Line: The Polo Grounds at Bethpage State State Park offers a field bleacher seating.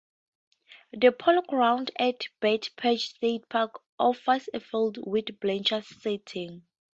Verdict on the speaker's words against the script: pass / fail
fail